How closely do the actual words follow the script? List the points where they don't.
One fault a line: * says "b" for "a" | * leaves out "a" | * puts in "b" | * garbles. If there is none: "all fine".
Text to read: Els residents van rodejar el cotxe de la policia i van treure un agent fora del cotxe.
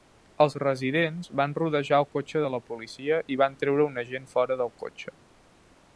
all fine